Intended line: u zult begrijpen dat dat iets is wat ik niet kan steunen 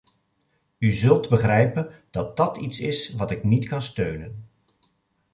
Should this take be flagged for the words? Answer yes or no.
no